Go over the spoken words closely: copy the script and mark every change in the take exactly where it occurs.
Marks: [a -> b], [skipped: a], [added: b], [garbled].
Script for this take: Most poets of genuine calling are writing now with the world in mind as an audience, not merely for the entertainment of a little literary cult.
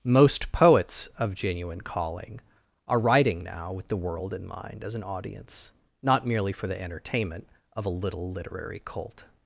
Most poets of genuine calling are writing now with the world in mind as an audience, not merely for the entertainment of a little literary cult.